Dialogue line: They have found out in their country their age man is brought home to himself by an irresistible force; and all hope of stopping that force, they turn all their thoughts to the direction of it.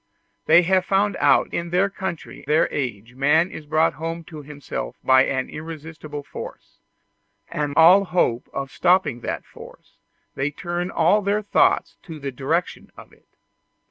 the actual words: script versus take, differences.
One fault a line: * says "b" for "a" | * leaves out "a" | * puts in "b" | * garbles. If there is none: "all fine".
all fine